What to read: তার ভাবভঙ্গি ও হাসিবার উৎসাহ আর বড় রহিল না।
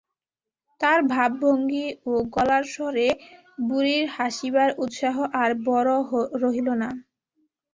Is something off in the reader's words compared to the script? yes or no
yes